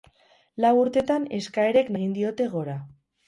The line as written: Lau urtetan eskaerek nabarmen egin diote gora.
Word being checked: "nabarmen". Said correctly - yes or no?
no